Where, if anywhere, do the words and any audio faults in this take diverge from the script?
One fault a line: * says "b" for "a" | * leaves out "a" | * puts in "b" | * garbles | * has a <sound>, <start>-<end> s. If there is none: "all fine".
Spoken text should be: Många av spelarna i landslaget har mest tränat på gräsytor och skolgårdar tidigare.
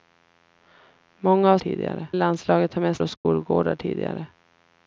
* says "tidigare" for "spelarna"
* leaves out "tränat på gräsytor"
* has a dropout, 3.2-3.3 s